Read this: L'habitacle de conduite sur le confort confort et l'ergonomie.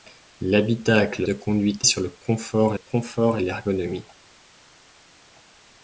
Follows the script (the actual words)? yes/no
yes